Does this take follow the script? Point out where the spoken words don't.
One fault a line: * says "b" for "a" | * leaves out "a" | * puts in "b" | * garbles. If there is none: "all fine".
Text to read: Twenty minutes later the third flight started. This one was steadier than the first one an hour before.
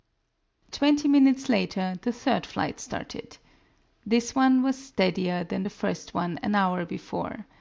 all fine